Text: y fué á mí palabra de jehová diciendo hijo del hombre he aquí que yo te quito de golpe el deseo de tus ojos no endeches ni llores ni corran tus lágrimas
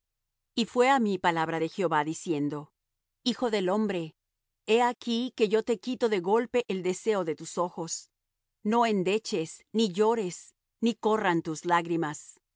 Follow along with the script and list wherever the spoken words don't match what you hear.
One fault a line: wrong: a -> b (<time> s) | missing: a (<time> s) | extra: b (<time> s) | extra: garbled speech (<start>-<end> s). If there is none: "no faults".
no faults